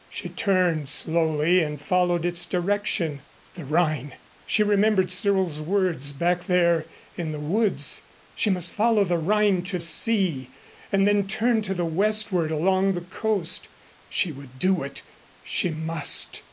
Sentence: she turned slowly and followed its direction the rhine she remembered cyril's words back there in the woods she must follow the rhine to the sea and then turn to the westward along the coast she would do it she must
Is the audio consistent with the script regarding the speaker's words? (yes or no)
no